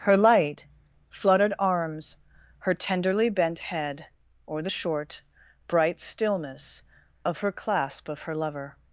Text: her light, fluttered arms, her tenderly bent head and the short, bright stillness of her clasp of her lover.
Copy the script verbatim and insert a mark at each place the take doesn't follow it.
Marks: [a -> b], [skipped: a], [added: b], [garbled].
her light, fluttered arms, her tenderly bent head [and -> or] the short, bright stillness of her clasp of her lover.